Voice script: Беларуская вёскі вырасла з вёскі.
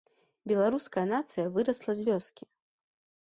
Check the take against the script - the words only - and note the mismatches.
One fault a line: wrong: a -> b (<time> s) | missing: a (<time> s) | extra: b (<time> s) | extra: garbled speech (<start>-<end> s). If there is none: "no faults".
wrong: вёскі -> нацыя (1.1 s)